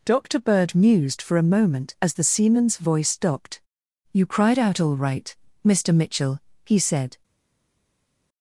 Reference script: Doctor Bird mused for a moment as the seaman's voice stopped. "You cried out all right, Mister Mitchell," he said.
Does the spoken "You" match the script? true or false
true